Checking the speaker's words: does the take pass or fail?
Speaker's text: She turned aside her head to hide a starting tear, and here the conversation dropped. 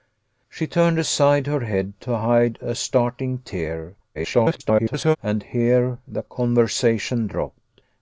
fail